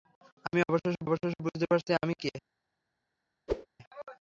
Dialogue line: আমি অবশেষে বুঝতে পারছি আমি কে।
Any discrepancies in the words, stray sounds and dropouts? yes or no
yes